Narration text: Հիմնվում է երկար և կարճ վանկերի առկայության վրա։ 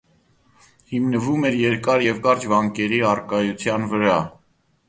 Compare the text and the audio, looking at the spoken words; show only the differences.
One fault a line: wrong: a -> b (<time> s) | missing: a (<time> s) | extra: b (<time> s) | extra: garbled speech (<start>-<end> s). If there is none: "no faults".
wrong: է -> էր (1.5 s)